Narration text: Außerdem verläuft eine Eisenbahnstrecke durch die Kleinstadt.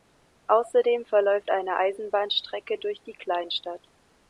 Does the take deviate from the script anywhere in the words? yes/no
no